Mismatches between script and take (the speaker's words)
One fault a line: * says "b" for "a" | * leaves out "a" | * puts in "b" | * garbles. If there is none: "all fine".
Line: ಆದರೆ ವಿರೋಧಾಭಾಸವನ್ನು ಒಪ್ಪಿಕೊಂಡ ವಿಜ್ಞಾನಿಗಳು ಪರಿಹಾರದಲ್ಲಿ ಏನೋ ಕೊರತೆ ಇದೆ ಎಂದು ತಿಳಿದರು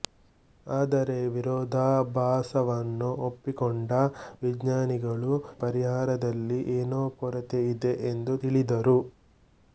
all fine